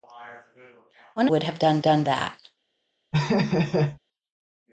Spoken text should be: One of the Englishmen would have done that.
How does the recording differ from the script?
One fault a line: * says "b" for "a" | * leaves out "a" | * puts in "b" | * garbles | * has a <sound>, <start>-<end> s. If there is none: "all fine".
* leaves out "of the Englishmen"
* puts in "done"
* has a laugh, 3.1-4.0 s